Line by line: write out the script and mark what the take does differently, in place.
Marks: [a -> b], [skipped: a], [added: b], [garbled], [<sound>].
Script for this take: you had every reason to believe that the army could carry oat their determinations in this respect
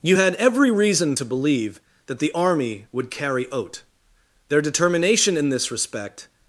you had every reason to believe that the army [could -> would] carry oat their [determinations -> determination] in this respect